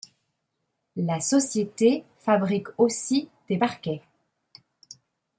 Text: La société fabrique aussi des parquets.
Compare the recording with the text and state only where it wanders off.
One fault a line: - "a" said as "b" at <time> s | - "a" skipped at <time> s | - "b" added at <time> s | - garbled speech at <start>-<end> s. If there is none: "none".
none